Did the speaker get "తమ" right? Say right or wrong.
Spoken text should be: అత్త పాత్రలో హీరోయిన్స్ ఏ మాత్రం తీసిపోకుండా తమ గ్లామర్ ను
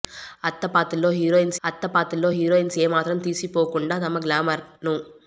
right